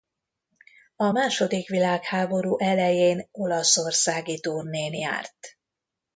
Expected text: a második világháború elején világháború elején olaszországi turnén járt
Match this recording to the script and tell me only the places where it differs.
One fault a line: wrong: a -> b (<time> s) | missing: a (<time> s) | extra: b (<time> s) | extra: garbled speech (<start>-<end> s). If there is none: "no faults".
missing: világháború elején (3.3 s)